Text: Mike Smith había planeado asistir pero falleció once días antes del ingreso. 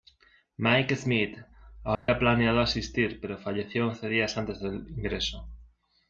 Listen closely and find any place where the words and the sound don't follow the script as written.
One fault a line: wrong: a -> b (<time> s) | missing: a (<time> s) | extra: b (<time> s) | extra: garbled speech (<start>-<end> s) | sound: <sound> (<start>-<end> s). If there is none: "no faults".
sound: dropout (1.9-2.1 s)